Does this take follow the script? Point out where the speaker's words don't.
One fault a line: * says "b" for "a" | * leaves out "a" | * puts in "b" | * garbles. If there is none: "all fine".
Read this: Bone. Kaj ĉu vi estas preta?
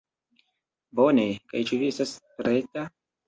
all fine